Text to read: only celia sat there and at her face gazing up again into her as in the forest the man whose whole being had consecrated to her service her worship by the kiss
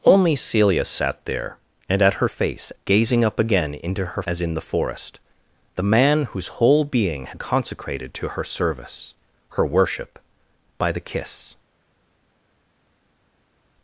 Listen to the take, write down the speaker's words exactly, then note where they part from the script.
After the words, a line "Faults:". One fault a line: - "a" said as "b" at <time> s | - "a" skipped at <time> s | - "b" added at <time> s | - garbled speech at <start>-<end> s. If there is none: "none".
only celia sat there and at her face gazing up again into her as in the forest the man whose whole being had consecrated to her service her worship by the kiss
Faults:
none